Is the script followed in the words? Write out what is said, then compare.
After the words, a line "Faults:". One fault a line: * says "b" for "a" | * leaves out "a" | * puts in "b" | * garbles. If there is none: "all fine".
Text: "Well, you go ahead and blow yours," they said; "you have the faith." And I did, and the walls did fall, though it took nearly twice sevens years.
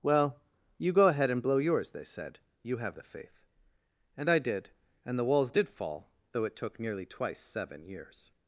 "Well, you go ahead and blow yours," they said; "you have the faith." And I did, and the walls did fall, though it took nearly twice seven years.
Faults:
* says "seven" for "sevens"